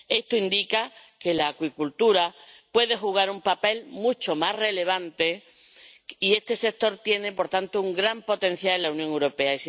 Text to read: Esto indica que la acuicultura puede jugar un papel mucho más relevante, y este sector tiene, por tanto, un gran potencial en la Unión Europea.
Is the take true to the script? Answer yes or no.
yes